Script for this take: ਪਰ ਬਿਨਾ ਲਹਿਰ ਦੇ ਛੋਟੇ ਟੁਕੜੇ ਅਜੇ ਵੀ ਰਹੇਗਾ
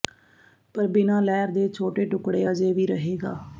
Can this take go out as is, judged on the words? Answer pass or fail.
pass